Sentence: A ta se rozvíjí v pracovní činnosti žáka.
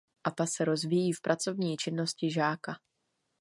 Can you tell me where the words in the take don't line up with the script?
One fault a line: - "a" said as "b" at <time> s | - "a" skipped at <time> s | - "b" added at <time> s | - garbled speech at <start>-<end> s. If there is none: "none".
none